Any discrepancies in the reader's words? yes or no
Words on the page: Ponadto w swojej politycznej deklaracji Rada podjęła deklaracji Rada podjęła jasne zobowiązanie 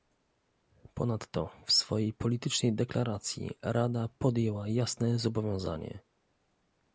yes